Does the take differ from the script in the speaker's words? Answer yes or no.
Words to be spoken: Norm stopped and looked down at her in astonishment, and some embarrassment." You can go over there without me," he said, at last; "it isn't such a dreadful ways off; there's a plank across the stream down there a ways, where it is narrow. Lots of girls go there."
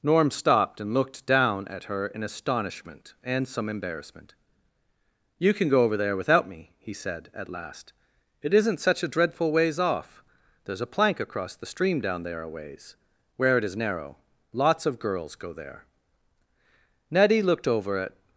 yes